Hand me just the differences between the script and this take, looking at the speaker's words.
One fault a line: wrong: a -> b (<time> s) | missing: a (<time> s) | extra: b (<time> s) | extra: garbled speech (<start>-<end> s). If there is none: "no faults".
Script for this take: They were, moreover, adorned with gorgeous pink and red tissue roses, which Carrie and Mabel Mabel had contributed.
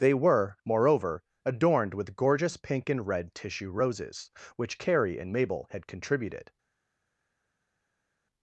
missing: Mabel (5.7 s)